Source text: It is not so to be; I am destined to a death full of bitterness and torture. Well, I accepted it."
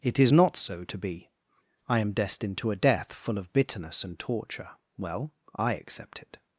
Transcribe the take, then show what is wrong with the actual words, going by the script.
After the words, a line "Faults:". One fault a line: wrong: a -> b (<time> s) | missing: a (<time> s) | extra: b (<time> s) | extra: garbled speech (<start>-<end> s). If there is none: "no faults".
It is not so to be; I am destined to a death full of bitterness and torture. Well, I accept it."
Faults:
wrong: accepted -> accept (5.8 s)